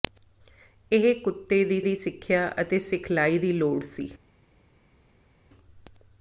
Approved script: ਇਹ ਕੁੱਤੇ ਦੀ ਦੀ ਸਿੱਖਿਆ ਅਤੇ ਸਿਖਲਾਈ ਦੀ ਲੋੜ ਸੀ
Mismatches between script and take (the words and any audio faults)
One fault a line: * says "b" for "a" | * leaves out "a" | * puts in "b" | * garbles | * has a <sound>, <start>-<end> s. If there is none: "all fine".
all fine